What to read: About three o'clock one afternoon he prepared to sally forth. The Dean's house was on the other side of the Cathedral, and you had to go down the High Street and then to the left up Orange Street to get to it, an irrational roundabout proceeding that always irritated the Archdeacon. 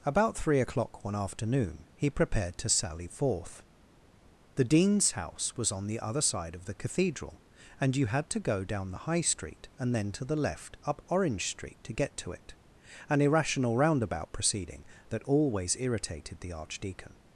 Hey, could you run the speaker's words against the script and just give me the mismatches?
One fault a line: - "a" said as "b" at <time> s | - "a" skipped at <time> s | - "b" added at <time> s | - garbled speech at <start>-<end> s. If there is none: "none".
none